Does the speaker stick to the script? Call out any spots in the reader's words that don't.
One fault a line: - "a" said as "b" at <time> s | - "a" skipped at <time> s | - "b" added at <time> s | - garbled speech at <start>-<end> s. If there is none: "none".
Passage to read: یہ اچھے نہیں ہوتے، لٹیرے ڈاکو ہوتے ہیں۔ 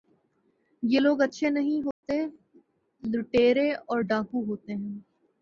- "لوگ" added at 1.0 s
- "اور" added at 3.7 s